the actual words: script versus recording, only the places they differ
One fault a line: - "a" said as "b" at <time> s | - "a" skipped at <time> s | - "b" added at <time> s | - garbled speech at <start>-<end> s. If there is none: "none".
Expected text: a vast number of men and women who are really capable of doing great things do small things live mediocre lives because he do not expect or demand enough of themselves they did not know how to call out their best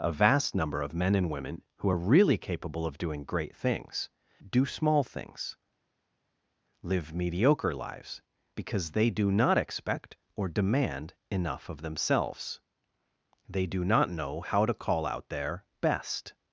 - "he" said as "they" at 8.9 s
- "did" said as "do" at 13.7 s